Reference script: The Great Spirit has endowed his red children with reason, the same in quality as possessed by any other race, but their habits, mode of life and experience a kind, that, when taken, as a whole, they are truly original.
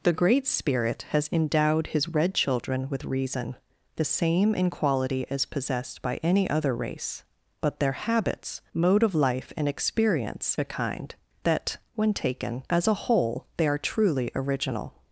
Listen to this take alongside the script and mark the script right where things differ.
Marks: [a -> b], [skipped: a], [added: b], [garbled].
The Great Spirit has endowed his red children with reason, the same in quality as possessed by any other race, but their habits, mode of life and experience a kind, that, when taken, as a whole, they are truly original.